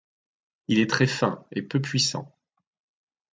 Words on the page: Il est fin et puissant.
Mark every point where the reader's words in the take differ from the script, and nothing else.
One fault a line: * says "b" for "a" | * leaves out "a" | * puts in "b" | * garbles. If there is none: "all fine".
* puts in "très"
* puts in "peu"